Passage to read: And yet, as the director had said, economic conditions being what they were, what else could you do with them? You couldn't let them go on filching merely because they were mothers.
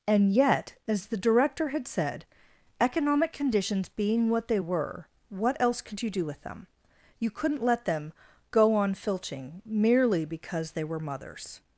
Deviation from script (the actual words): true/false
false